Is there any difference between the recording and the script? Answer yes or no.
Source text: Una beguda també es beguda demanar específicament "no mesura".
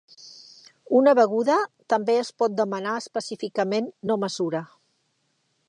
yes